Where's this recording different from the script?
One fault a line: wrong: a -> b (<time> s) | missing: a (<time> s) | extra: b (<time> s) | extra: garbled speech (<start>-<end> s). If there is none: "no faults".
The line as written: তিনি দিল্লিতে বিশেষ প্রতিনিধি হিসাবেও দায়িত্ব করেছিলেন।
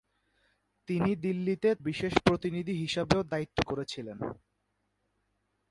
no faults